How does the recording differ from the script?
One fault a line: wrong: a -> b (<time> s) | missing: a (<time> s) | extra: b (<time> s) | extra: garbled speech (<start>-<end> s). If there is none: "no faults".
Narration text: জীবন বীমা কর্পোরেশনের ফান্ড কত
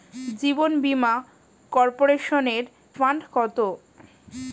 no faults